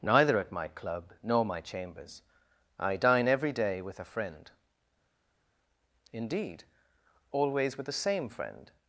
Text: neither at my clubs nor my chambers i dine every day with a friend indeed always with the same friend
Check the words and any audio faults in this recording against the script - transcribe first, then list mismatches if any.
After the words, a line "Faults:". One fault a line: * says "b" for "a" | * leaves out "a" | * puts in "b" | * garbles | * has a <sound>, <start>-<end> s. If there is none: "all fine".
neither at my club nor my chambers i dine every day with a friend indeed always with the same friend
Faults:
* says "club" for "clubs"